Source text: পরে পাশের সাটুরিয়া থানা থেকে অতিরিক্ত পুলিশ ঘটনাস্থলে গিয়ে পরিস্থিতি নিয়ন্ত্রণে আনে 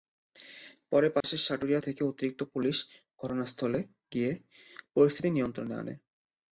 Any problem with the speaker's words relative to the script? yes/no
yes